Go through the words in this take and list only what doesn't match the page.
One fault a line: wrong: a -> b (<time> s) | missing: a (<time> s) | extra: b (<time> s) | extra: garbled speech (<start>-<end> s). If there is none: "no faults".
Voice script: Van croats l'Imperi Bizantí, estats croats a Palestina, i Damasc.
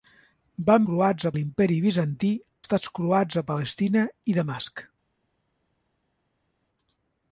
no faults